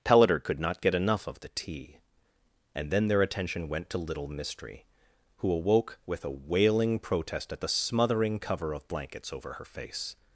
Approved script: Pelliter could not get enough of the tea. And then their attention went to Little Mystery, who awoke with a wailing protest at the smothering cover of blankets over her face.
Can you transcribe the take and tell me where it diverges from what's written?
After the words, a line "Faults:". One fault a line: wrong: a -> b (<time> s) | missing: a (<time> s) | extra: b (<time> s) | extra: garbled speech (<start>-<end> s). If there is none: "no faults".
Pelliter could not get enough of the tea. And then their attention went to Little Mystery, who awoke with a wailing protest at the smothering cover of blankets over her face.
Faults:
no faults